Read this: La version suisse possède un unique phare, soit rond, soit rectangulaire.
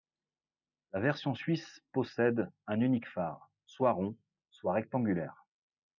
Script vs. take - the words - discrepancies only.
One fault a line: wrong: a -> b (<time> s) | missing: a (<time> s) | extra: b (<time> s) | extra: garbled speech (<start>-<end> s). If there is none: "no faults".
no faults